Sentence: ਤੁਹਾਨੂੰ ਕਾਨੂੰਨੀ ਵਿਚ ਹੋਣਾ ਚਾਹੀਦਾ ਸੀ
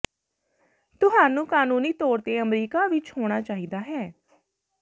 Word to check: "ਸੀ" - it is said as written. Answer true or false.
false